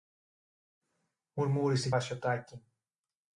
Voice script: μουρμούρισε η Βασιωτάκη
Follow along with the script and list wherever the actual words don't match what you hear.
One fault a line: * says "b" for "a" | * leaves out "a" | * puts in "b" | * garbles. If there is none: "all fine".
all fine